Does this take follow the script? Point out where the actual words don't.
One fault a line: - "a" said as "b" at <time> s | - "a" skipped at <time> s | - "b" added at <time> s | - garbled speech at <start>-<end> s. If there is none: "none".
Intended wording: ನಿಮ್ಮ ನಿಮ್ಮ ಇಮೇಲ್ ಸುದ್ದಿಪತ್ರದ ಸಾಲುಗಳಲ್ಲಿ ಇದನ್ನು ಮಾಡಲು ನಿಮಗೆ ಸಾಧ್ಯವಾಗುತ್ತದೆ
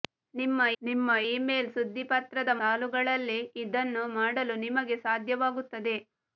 none